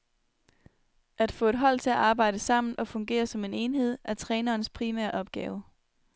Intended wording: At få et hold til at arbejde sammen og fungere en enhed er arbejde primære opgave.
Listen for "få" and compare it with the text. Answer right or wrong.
right